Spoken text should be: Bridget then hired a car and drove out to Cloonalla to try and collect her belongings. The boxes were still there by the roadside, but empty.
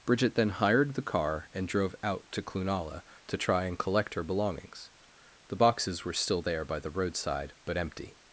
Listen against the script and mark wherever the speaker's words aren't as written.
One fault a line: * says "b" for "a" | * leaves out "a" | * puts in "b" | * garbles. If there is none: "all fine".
* says "the" for "a"